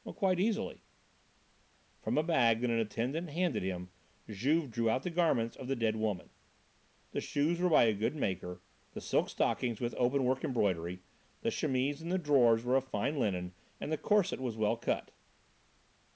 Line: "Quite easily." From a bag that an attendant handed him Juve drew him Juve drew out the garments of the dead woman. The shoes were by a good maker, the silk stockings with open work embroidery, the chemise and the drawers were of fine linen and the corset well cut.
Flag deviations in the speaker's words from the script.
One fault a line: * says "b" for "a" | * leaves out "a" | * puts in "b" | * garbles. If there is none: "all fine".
* leaves out "him Juve drew"
* puts in "was"